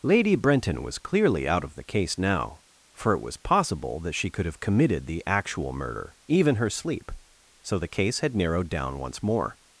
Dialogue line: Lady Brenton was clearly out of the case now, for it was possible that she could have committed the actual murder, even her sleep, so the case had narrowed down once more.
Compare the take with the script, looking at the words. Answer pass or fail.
pass